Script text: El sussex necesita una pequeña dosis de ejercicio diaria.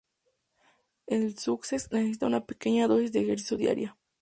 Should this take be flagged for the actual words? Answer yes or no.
no